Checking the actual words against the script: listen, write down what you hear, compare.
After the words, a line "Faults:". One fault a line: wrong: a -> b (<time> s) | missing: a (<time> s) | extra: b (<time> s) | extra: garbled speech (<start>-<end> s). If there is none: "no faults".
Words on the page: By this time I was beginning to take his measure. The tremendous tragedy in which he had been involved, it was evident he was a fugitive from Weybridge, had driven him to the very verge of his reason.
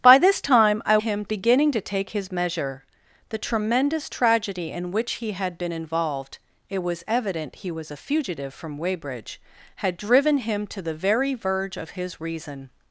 By this time I him beginning to take his measure. The tremendous tragedy in which he had been involved, it was evident he was a fugitive from Weybridge, had driven him to the very verge of his reason.
Faults:
wrong: was -> him (1.0 s)